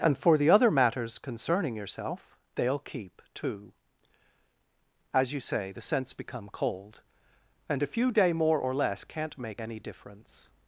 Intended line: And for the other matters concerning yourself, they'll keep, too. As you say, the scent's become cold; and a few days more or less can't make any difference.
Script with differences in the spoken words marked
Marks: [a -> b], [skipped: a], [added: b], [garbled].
And for the other matters concerning yourself, they'll keep, too. As you say, the scent's become cold; and a few [days -> day] more or less can't make any difference.